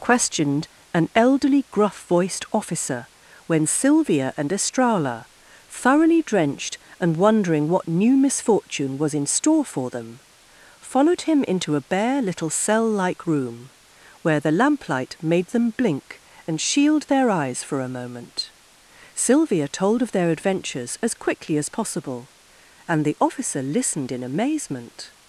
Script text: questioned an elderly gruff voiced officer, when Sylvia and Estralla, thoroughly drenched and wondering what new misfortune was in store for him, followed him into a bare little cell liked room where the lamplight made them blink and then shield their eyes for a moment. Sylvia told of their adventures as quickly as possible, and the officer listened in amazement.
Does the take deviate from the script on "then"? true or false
true